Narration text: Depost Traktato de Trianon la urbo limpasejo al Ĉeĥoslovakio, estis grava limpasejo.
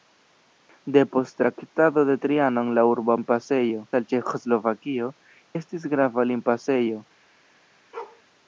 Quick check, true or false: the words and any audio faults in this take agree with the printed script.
false